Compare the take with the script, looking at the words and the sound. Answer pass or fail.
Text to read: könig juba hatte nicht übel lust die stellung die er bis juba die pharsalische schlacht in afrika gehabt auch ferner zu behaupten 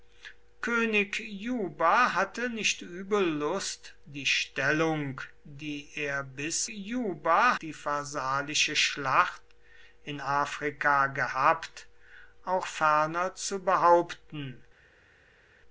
pass